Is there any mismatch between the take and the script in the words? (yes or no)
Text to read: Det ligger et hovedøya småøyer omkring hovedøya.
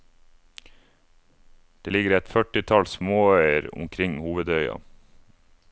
yes